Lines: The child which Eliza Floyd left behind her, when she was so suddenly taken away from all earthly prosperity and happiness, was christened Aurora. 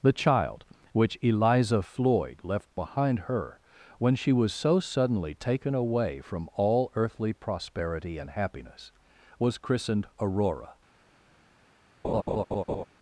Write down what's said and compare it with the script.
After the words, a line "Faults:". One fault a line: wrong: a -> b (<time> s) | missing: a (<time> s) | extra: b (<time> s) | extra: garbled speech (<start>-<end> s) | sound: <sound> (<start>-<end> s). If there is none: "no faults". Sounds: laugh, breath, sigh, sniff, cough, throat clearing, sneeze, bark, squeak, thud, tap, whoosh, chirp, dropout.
The child which Eliza Floyd left behind her, when she was so suddenly taken away from all earthly prosperity and happiness, was christened Aurora.
Faults:
sound: laugh (12.0-12.8 s)